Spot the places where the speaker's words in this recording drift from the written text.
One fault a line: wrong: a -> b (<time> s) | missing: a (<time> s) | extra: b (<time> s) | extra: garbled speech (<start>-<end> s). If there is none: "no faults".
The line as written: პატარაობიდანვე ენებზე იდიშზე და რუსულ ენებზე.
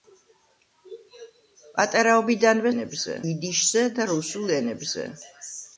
no faults